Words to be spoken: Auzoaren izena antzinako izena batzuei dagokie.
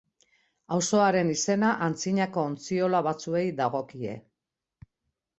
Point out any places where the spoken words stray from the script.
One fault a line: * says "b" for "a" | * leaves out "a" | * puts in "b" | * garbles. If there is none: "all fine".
* says "ontziola" for "izena"